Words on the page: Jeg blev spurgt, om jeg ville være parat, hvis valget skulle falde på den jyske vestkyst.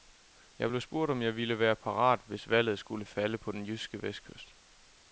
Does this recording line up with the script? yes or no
yes